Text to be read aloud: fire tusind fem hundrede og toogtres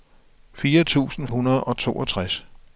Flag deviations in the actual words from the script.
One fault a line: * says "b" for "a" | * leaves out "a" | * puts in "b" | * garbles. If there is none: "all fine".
* leaves out "fem"